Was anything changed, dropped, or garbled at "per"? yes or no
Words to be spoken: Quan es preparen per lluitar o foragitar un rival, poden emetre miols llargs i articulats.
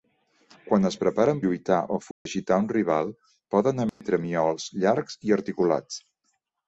yes